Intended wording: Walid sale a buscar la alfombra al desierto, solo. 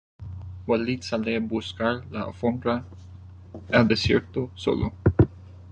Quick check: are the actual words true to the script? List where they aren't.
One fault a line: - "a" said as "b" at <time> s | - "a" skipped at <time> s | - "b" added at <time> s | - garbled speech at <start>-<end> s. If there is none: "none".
none